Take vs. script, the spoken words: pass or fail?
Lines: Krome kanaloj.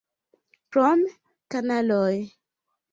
pass